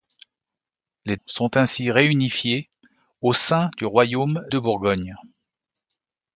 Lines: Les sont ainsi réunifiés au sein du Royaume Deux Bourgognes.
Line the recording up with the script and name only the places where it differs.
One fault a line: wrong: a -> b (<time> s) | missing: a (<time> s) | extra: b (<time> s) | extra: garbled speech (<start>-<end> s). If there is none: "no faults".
no faults